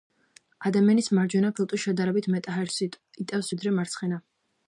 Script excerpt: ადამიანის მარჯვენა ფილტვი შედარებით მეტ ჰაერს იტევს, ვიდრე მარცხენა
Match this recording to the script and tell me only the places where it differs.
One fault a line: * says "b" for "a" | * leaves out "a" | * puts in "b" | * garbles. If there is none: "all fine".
all fine